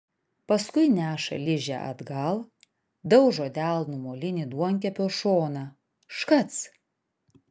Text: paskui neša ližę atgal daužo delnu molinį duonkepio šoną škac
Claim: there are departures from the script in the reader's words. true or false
false